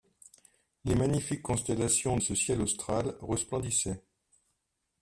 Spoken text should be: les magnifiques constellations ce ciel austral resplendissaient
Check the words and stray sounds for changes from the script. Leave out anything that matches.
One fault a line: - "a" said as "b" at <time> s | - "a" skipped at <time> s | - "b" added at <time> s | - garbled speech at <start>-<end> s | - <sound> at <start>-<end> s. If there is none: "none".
none